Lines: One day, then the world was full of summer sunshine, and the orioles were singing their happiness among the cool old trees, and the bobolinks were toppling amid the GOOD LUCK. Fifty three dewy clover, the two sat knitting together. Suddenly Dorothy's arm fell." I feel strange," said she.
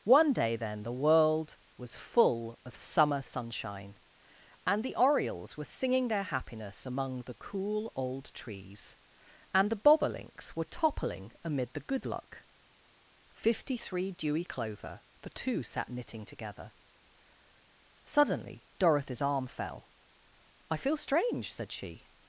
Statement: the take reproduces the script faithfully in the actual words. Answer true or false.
true